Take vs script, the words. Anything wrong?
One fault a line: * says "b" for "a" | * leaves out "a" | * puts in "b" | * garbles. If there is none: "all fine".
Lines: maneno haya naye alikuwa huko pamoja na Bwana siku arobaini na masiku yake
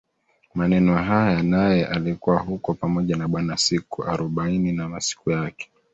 all fine